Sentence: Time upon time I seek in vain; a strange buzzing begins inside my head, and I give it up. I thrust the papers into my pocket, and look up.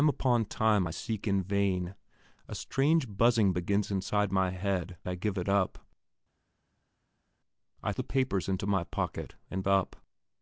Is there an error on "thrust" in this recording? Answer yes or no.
yes